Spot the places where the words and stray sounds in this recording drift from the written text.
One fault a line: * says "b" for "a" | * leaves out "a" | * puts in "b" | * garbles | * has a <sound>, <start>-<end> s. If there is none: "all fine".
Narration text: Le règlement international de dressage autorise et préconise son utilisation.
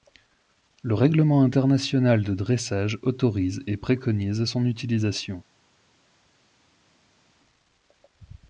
all fine